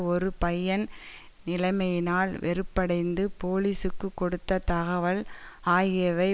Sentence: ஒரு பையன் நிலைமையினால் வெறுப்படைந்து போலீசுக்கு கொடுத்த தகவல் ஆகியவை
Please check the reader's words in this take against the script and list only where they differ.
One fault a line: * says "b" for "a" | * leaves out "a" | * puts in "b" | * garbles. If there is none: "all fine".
all fine